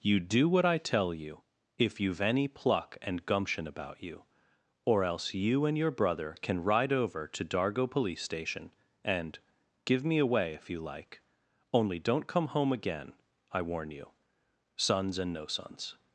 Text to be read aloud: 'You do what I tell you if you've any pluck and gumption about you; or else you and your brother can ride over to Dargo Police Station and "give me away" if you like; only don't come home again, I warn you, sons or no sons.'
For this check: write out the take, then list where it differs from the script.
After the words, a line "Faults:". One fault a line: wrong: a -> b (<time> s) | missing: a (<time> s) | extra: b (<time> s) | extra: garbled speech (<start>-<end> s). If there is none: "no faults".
'You do what I tell you if you've any pluck and gumption about you; or else you and your brother can ride over to Dargo Police Station and "give me away" if you like; only don't come home again, I warn you, sons and no sons.'
Faults:
wrong: or -> and (15.2 s)